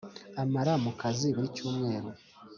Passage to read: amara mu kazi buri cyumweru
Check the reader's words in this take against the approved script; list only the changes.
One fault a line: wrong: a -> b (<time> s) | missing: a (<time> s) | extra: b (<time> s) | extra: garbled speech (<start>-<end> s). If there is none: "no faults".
no faults